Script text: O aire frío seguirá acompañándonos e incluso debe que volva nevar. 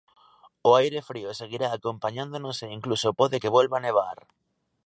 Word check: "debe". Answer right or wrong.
wrong